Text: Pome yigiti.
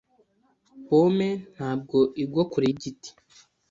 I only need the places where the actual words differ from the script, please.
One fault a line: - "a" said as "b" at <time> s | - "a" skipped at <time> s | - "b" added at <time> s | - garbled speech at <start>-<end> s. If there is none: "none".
- "ntabwo igwa kure" added at 1.6 s